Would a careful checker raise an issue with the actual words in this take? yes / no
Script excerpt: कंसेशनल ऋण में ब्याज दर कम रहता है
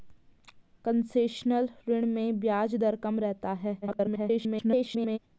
yes